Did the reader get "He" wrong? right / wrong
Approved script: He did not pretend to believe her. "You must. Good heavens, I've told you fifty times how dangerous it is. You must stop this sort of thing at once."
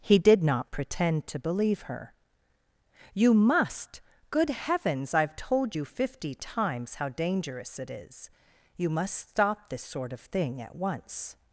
right